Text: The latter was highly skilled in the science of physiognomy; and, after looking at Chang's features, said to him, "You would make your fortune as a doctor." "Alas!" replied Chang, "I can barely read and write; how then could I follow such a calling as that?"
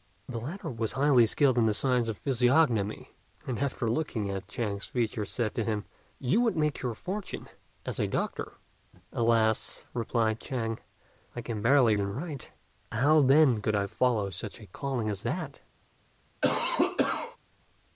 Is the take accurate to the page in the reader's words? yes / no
no